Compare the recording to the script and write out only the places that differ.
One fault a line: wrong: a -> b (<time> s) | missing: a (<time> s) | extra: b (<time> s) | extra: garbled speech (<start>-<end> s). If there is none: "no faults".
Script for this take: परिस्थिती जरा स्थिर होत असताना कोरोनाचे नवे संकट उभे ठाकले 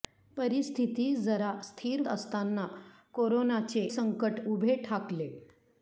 missing: होत (2.0 s)
missing: नवे (3.9 s)